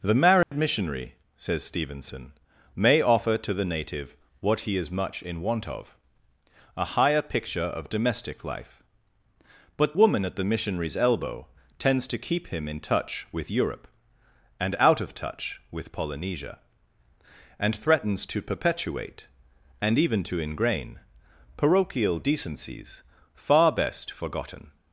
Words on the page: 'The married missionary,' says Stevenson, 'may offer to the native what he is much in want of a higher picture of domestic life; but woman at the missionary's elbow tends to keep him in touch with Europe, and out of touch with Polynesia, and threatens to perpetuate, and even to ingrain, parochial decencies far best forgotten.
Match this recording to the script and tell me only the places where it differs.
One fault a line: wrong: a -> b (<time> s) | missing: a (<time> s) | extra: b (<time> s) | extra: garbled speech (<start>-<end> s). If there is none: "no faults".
no faults